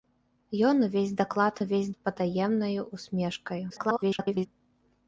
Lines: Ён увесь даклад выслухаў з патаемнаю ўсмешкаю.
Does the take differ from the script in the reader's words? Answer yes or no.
yes